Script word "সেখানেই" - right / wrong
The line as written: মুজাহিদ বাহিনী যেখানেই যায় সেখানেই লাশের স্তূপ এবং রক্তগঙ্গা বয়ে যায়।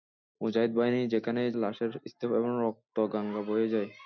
wrong